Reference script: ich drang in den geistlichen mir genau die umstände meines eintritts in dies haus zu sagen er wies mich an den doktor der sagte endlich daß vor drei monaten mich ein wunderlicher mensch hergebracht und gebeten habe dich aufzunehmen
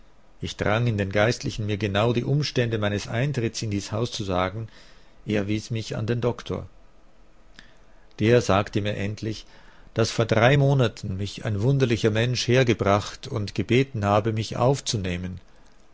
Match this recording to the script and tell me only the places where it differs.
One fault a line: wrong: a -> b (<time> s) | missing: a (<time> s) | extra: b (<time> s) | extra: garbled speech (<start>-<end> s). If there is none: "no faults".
extra: mir (8.8 s)
wrong: dich -> mich (14.3 s)